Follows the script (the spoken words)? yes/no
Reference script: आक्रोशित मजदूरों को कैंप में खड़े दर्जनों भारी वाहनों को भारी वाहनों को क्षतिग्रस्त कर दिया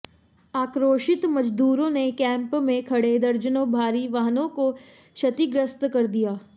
no